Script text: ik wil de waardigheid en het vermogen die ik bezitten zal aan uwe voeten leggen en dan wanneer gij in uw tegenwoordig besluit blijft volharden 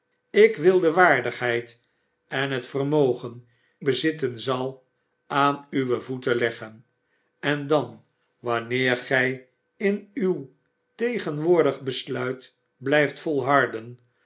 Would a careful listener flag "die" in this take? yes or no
yes